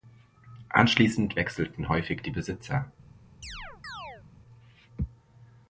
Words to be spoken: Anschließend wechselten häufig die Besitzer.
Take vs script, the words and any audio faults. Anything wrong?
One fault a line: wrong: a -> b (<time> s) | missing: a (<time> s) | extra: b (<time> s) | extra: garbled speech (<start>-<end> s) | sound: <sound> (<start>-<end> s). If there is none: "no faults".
sound: chirp (3.4-4.2 s)